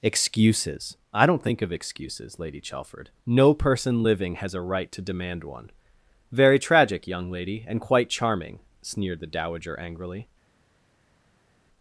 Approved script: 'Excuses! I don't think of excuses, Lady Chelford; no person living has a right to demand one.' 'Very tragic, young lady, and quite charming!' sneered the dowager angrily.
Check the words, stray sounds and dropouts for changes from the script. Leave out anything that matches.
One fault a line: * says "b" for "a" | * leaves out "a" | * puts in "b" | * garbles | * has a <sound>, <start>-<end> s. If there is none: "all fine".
all fine